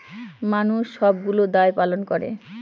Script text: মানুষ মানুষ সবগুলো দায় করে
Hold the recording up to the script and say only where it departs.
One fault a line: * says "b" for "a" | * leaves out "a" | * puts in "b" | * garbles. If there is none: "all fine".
* leaves out "মানুষ"
* puts in "পালন"